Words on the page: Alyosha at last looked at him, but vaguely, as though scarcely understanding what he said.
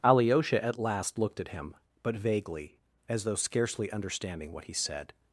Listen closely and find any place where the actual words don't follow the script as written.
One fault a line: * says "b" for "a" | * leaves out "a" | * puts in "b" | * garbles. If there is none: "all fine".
all fine